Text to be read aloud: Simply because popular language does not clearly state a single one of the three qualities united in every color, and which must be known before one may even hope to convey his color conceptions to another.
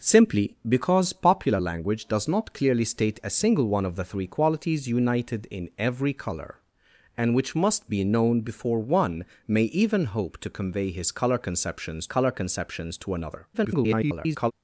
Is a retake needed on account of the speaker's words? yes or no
yes